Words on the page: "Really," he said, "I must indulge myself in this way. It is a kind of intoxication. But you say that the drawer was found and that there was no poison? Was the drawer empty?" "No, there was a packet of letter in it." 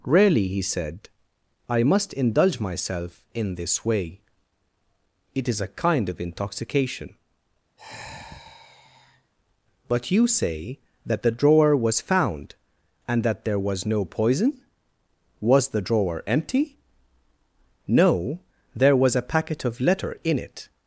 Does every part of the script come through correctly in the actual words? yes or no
yes